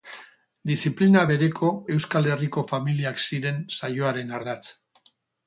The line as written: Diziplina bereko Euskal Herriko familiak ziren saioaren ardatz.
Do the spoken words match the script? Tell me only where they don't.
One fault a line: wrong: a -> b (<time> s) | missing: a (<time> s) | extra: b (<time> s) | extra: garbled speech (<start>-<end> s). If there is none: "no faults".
no faults